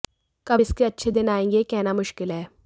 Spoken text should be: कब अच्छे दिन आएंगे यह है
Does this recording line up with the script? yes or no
no